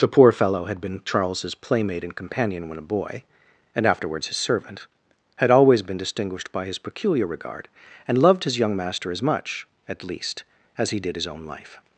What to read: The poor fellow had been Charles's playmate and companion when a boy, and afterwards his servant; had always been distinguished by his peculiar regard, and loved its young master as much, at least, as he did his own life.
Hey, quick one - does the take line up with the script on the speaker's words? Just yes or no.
no